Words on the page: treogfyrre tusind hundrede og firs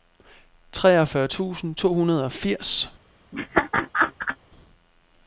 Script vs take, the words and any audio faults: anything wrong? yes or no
yes